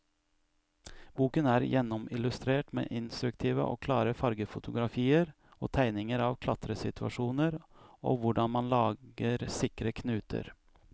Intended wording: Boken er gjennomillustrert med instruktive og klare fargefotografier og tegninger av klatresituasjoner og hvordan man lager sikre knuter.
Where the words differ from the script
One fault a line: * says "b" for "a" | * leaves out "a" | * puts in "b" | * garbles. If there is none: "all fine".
all fine